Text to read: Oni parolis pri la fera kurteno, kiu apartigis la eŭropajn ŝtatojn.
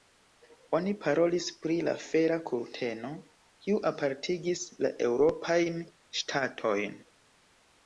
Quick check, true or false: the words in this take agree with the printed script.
true